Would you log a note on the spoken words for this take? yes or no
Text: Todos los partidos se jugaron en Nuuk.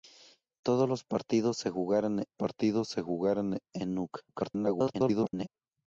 yes